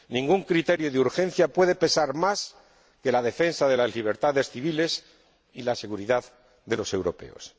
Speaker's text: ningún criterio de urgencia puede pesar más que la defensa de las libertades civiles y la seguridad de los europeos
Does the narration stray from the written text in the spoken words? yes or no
no